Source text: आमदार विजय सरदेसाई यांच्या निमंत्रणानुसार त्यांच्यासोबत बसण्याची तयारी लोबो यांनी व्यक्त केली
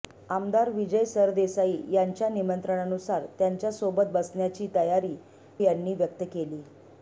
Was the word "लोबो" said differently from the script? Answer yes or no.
yes